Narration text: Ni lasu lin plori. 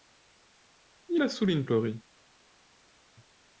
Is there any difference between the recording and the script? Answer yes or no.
no